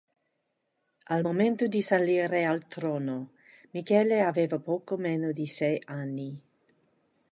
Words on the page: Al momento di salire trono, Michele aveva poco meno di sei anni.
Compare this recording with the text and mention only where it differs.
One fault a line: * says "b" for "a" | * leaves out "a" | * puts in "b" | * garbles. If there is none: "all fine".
* puts in "al"